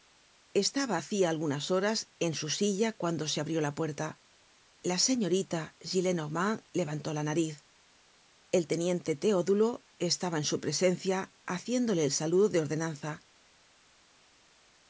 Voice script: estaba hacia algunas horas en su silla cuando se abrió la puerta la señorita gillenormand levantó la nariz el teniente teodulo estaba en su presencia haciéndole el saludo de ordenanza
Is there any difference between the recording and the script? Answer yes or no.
no